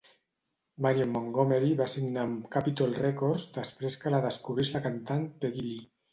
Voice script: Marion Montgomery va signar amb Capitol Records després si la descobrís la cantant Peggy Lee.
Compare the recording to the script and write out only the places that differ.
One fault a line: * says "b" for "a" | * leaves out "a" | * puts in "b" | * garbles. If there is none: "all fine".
* says "que" for "si"